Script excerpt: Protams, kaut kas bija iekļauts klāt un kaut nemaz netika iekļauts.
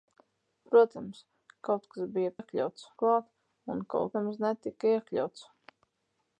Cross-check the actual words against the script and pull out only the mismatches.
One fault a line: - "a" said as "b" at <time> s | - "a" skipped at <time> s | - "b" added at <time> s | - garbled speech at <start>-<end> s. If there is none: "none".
none